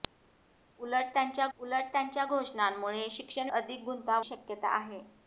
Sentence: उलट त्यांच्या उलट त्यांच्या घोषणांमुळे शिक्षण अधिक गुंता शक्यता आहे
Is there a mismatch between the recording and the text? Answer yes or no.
no